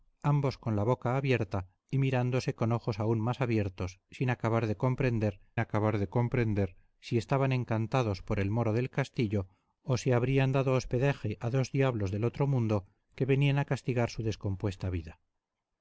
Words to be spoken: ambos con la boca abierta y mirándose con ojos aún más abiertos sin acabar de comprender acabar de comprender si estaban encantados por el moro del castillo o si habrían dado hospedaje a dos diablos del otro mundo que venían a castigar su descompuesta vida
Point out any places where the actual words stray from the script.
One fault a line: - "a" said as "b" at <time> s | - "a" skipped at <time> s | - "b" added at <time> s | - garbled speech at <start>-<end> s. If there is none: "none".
none